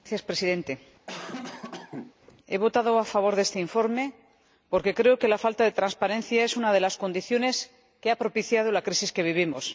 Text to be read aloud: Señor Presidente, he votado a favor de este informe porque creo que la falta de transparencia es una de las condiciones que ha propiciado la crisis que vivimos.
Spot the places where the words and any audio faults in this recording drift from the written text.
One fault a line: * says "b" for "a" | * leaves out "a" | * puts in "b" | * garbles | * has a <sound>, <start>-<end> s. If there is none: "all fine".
* has a cough, 1.1-2.1 s